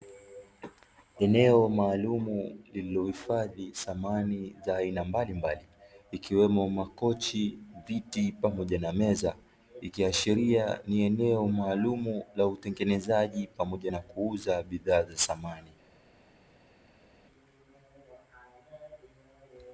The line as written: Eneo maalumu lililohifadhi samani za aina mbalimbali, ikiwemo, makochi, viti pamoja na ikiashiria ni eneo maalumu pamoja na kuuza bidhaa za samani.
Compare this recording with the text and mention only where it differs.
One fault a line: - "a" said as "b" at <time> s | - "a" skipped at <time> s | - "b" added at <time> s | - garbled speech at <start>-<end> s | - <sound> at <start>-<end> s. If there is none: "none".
- "meza" added at 8.9 s
- "la utengenezaji" added at 12.3 s